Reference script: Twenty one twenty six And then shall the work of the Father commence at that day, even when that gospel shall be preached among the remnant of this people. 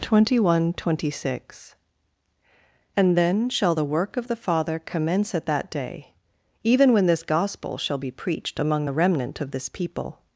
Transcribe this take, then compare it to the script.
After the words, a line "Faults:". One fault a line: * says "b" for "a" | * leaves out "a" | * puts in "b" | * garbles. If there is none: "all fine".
Twenty one twenty six And then shall the work of the Father commence at that day, even when this gospel shall be preached among the remnant of this people.
Faults:
* says "this" for "that"